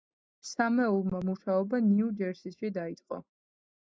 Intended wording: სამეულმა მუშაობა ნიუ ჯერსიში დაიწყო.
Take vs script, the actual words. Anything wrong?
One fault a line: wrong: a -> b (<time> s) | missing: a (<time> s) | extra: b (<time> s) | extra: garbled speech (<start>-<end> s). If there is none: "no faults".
no faults